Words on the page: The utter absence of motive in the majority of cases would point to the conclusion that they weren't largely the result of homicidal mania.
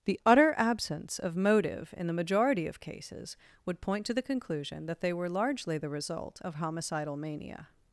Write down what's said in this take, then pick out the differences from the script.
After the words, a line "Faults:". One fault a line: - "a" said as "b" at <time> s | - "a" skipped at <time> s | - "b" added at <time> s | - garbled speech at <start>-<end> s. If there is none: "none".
The utter absence of motive in the majority of cases would point to the conclusion that they were largely the result of homicidal mania.
Faults:
- "weren't" said as "were" at 5.1 s